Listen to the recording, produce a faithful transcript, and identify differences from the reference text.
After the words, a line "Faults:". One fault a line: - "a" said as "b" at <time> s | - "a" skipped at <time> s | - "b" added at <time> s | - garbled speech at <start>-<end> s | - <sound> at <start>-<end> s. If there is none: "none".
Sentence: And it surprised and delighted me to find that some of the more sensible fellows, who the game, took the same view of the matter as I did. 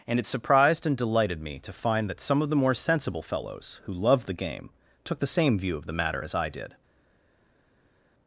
And it surprised and delighted me to find that some of the more sensible fellows, who loved the game, took the same view of the matter as I did.
Faults:
- "loved" added at 3.9 s